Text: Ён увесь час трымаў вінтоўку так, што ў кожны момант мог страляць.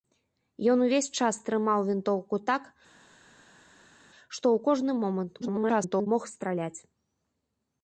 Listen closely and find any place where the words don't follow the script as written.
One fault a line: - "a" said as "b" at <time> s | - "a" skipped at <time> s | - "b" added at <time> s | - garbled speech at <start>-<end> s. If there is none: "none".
- garbled speech at 5.4-6.1 s